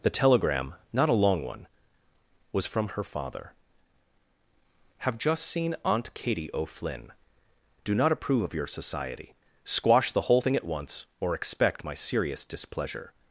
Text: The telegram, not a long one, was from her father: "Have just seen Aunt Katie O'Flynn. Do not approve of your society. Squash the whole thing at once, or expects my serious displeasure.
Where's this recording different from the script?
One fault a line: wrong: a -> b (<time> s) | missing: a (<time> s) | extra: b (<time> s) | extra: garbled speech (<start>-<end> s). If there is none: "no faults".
wrong: expects -> expect (11.3 s)